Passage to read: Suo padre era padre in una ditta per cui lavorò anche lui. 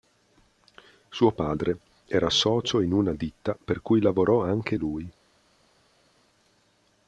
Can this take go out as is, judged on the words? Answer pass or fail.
fail